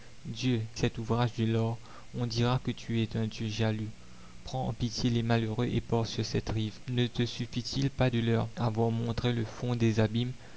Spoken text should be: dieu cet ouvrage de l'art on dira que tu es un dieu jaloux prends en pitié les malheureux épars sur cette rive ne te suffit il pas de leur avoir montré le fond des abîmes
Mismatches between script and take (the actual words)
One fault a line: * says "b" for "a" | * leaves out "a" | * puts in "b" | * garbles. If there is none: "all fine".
all fine